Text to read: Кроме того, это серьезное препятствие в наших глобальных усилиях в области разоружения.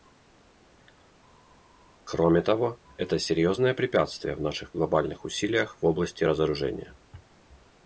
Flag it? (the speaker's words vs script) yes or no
no